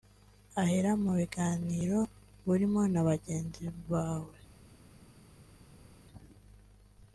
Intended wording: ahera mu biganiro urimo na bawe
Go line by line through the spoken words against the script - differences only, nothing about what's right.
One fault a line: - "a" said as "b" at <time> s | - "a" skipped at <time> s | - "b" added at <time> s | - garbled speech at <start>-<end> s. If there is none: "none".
- "bagenzi" added at 3.1 s